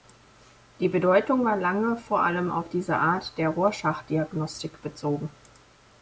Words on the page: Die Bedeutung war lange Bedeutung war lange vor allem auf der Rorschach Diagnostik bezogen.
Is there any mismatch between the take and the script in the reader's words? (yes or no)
yes